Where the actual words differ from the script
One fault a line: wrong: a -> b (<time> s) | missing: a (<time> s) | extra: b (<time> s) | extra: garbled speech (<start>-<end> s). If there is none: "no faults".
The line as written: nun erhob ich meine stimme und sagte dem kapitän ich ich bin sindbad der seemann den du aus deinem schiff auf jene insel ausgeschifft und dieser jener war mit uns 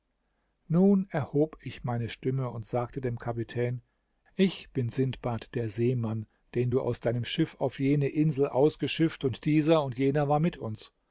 missing: ich (4.7 s)
extra: und (9.8 s)